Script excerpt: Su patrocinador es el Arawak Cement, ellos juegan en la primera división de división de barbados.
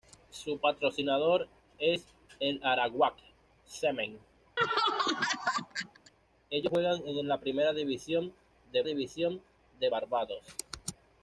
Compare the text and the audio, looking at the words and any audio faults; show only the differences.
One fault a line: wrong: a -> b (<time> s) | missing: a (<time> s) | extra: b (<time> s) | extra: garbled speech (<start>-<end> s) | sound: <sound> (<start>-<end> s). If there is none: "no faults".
sound: laugh (4.6-6.1 s)